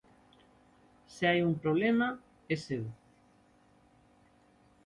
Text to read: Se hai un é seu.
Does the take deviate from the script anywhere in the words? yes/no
yes